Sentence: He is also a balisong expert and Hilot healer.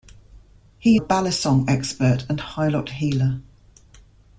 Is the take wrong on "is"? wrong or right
wrong